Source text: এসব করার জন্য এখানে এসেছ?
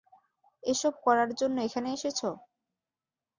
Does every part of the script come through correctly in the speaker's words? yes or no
yes